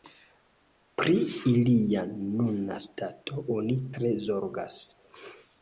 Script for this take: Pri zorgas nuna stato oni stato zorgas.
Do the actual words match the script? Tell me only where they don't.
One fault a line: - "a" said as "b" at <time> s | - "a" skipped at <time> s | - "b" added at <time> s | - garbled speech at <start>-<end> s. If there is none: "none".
- "zorgas" said as "ilia" at 1.5 s
- "stato" said as "tre" at 4.0 s